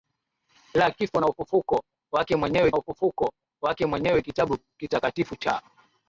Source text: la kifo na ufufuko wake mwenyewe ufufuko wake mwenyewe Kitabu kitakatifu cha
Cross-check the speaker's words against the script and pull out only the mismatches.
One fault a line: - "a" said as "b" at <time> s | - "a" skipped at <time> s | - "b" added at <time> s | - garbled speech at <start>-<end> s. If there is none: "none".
none